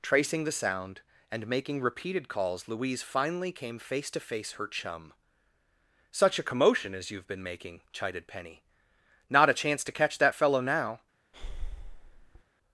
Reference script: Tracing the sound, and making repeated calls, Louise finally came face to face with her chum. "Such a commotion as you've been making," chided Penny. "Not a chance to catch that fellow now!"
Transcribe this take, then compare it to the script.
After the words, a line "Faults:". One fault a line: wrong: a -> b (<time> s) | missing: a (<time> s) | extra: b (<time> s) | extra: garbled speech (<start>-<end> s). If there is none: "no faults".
Tracing the sound, and making repeated calls, Louise finally came face to face her chum. "Such a commotion as you've been making," chided Penny. "Not a chance to catch that fellow now!"
Faults:
missing: with (4.5 s)